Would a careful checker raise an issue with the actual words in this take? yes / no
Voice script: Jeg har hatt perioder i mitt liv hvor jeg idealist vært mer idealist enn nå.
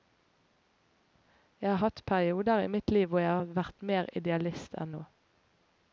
yes